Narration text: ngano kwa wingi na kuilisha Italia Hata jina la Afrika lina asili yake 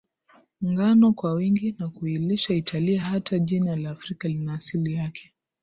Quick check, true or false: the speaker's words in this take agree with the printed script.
true